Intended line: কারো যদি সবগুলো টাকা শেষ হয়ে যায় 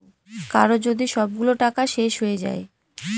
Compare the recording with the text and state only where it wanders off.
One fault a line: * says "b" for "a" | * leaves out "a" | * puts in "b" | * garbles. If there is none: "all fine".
all fine